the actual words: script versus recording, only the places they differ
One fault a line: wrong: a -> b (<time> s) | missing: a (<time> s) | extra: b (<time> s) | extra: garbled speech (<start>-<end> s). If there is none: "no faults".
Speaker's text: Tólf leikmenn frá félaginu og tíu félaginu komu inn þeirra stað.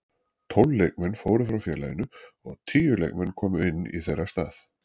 extra: fóru (1.2 s)
wrong: félaginu -> leikmenn (3.0 s)
extra: í (4.0 s)